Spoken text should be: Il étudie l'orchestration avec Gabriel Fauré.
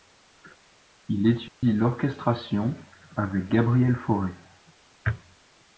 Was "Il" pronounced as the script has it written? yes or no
yes